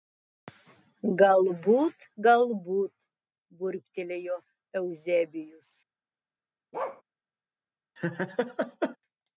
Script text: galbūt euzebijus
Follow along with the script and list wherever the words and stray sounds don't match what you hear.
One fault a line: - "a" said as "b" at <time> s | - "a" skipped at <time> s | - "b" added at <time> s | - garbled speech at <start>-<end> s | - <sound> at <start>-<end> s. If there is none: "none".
- "galbūt burbtelėjo" added at 2.3 s
- bark at 6.7-7.0 s
- laugh at 8.0-9.0 s